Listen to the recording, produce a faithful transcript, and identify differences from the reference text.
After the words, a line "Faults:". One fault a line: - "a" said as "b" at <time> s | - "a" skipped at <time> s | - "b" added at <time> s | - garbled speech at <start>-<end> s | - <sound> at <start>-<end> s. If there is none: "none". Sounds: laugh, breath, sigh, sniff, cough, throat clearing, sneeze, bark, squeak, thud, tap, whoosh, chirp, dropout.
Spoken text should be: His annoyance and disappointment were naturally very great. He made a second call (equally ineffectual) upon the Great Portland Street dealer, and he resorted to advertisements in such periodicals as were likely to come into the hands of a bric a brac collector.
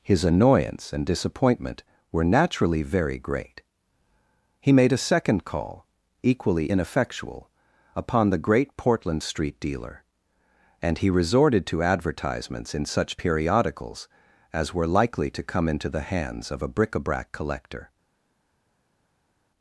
His annoyance and disappointment were naturally very great. He made a second call (equally ineffectual) upon the Great Portland Street dealer, and he resorted to advertisements in such periodicals as were likely to come into the hands of a bric a brac collector.
Faults:
none